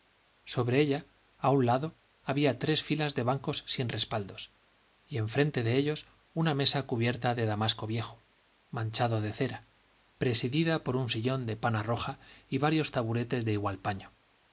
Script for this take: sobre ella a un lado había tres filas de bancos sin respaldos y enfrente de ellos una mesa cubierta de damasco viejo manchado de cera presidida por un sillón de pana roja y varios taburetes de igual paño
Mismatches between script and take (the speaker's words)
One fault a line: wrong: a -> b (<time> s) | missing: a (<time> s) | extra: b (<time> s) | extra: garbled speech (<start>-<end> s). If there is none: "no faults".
no faults